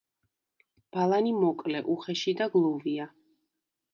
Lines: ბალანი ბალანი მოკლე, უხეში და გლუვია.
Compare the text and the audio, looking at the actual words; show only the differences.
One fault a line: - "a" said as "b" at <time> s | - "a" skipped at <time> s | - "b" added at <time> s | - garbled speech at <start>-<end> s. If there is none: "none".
- "ბალანი" skipped at 1.3 s